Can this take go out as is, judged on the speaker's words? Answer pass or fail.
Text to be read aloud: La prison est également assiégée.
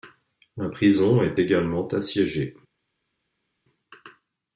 pass